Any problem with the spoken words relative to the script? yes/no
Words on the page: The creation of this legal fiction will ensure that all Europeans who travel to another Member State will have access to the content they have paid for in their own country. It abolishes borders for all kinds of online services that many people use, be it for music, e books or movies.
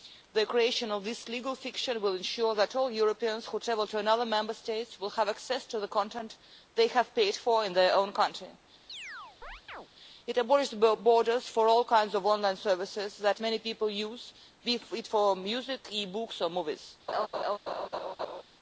no